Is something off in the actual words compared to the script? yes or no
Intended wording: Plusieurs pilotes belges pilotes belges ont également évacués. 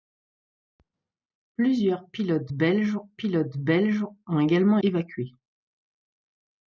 no